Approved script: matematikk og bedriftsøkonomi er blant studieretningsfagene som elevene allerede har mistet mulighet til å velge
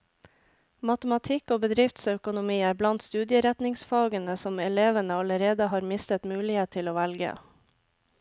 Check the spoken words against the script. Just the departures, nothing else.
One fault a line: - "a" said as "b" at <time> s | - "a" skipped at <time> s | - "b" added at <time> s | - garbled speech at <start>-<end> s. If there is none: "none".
none